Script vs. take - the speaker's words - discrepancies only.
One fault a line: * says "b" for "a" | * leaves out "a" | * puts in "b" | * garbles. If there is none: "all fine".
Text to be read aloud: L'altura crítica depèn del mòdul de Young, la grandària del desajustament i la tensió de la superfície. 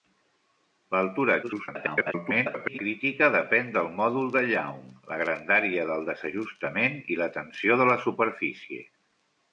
* garbles